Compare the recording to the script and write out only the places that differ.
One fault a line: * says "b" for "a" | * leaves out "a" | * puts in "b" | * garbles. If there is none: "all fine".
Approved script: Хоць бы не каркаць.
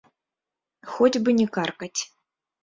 all fine